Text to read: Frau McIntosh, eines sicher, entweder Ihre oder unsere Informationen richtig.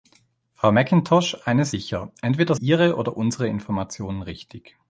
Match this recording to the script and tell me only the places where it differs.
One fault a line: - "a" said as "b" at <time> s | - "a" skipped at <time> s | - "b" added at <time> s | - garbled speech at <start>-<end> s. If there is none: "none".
none